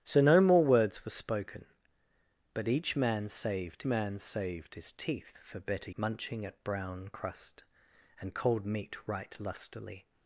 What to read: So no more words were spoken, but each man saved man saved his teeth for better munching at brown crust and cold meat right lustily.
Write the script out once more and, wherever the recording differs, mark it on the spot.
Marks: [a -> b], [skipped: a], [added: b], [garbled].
So no more words were spoken, but each man saved man saved his teeth for better munching at brown crust and cold meat right lustily.